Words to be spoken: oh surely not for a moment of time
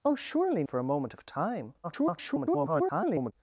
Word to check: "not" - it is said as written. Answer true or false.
false